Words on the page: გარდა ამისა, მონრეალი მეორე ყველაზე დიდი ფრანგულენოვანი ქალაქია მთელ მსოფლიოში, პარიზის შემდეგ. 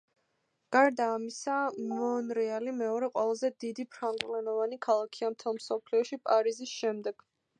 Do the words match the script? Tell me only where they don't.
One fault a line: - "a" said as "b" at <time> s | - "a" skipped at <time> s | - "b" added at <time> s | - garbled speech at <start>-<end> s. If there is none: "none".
none